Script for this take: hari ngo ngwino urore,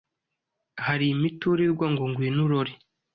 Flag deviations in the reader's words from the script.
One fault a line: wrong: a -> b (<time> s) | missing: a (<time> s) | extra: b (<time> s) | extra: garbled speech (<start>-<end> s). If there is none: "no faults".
extra: imiturirwa (1.1 s)